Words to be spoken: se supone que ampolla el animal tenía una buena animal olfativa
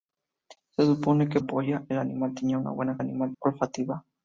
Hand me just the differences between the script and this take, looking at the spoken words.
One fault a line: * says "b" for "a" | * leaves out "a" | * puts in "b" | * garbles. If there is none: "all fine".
all fine